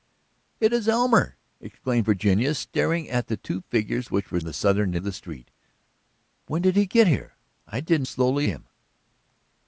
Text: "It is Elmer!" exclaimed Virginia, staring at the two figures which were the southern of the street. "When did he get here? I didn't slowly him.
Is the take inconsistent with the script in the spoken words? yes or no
no